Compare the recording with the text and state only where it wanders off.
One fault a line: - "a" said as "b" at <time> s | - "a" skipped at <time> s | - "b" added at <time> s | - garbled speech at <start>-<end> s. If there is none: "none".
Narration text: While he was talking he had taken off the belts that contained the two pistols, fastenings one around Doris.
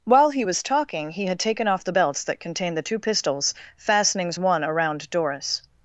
none